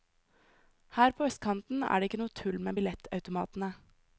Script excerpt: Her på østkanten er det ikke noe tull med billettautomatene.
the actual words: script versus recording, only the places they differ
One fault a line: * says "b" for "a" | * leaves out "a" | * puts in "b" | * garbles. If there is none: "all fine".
all fine